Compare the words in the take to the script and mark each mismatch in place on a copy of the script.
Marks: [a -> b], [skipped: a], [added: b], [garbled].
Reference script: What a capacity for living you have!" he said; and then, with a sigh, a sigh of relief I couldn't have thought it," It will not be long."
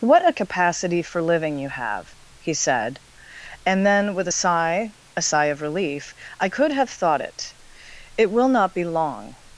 What a capacity for living you have!" he said; and then, with a sigh, a sigh of relief I [couldn't -> could] have thought it," It will not be long."